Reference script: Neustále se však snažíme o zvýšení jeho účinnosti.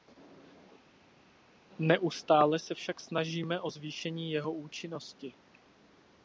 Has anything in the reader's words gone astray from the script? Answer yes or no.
no